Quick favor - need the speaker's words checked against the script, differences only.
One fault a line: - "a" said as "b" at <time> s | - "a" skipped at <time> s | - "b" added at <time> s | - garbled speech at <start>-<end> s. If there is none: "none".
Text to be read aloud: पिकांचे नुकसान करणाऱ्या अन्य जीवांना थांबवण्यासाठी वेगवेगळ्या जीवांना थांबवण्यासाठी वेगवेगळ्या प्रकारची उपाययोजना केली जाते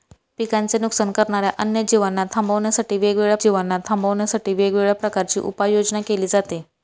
none